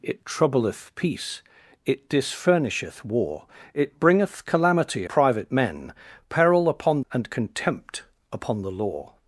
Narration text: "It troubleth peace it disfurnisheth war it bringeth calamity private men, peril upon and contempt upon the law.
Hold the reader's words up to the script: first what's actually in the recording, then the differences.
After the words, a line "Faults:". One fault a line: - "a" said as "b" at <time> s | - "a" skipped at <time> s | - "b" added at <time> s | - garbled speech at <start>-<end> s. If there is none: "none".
"It troubleth peace it disfurnisheth war it bringeth calamity private men, peril upon and contempt upon the law.
Faults:
none